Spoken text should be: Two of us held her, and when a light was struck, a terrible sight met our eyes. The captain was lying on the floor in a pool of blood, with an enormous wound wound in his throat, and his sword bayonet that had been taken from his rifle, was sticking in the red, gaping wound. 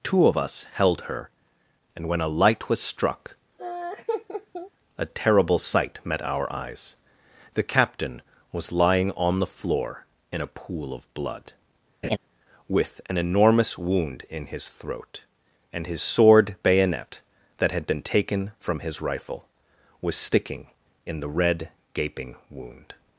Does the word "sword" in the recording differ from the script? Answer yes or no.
no